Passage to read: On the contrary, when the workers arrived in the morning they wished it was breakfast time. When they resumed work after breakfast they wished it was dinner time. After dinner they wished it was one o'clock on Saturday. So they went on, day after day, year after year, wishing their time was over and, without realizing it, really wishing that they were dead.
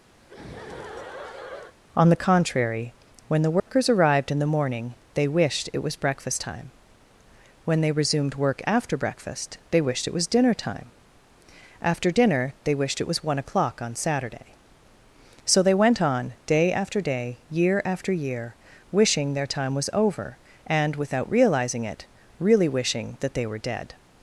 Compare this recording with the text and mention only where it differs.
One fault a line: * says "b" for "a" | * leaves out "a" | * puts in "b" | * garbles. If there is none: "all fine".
all fine